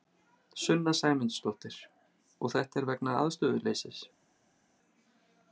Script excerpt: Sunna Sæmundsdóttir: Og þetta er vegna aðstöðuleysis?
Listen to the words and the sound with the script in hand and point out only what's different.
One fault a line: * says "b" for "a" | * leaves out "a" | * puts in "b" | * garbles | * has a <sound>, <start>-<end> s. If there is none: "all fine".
all fine